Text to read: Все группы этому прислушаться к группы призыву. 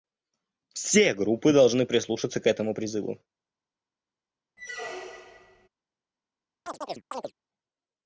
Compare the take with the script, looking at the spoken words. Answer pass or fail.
fail